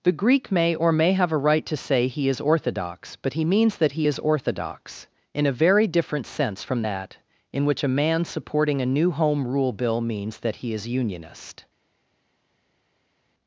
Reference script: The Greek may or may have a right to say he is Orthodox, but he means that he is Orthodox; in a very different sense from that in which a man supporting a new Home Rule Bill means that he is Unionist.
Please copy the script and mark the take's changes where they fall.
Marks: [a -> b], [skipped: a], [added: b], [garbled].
The Greek may or may have a right to say he is Orthodox, but he means that he is Orthodox; in a very different sense from that in which a man supporting a new Home Rule Bill means that he is Unionist.